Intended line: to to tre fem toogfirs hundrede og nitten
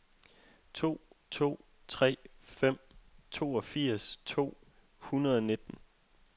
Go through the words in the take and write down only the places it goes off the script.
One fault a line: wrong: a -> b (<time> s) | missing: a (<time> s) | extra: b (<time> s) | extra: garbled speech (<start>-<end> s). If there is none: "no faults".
extra: to (4.2 s)